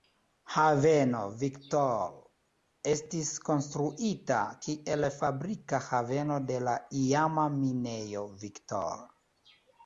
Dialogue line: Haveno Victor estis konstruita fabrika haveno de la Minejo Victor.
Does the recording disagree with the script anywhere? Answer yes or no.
yes